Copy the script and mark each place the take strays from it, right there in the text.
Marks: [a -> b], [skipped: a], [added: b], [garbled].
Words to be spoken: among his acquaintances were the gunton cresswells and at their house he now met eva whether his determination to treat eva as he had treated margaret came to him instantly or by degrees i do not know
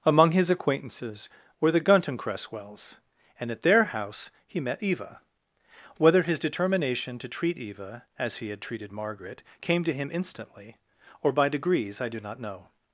among his acquaintances were the gunton cresswells and at their house he [skipped: now] met eva whether his determination to treat eva as he had treated margaret came to him instantly or by degrees i do not know